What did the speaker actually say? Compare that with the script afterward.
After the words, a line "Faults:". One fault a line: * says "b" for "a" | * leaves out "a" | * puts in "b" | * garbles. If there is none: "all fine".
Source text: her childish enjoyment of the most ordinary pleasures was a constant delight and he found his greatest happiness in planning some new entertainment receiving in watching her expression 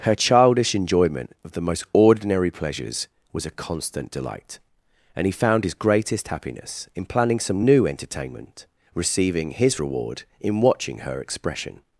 her childish enjoyment of the most ordinary pleasures was a constant delight and he found his greatest happiness in planning some new entertainment receiving his reward in watching her expression
Faults:
* puts in "his reward"